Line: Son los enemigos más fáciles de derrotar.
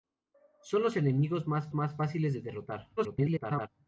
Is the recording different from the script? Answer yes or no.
yes